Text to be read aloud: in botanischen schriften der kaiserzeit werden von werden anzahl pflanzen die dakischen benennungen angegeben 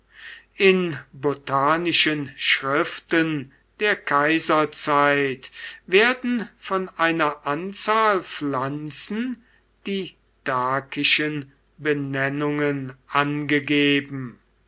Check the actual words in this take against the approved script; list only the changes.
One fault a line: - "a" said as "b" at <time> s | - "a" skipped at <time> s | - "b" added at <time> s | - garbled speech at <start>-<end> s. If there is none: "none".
- "werden" said as "einer" at 7.0 s